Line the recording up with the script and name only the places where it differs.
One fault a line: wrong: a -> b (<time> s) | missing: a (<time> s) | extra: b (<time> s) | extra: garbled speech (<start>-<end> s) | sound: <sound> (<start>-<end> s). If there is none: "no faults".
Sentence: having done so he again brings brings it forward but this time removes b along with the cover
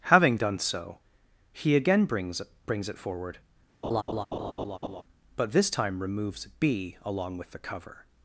sound: laugh (3.8-5.0 s)